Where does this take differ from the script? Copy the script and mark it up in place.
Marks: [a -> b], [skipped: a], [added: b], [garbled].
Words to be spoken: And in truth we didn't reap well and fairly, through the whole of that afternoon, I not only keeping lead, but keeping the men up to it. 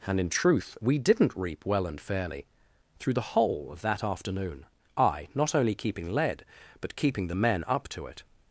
And in truth we didn't reap well and fairly, through the whole of that afternoon, I not only keeping lead, but keeping the men up to it.